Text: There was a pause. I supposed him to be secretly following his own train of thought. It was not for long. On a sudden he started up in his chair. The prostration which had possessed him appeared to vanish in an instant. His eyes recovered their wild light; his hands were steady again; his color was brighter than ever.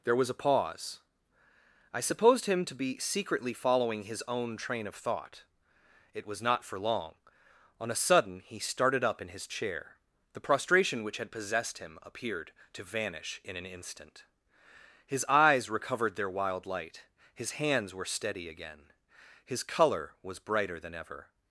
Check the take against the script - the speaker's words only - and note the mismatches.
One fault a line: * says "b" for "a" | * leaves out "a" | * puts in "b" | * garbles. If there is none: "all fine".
all fine